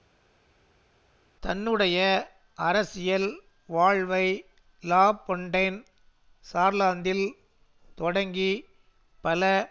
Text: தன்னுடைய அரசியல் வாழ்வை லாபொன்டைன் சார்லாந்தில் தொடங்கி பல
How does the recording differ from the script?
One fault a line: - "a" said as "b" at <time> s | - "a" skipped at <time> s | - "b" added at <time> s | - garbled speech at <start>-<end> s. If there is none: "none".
none